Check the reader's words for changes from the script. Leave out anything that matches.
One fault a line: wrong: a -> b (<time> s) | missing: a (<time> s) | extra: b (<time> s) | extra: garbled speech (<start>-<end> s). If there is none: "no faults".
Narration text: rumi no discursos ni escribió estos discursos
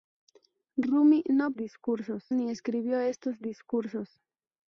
no faults